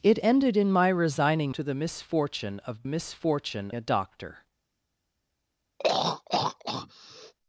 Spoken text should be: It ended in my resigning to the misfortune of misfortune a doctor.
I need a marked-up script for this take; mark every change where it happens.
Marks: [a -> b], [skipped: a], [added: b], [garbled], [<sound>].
It ended in my resigning to the misfortune of misfortune a doctor. [throat clearing]